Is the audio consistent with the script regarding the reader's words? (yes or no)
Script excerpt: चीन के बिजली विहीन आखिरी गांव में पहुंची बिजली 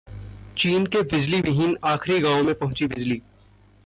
yes